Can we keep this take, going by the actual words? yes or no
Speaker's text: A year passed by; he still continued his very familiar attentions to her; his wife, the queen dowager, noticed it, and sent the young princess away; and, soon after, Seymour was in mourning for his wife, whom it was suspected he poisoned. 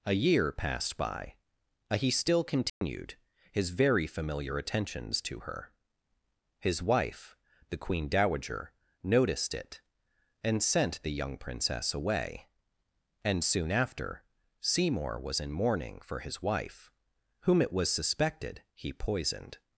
yes